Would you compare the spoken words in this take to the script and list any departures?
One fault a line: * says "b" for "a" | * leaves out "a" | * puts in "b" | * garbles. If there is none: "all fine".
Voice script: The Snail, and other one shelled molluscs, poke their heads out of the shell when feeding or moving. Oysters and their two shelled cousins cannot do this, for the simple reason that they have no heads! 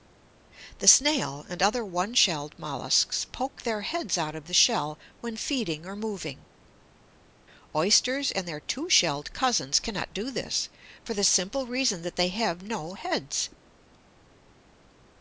all fine